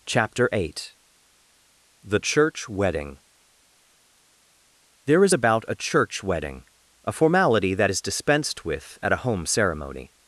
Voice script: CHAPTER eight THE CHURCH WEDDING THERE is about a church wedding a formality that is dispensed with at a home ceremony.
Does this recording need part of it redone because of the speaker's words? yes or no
no